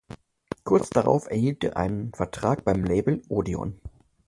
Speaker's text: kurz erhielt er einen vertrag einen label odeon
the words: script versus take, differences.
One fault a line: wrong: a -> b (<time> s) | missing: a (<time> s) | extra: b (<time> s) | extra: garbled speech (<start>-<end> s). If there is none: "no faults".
extra: darauf (0.9 s)
wrong: einen -> beim (2.6 s)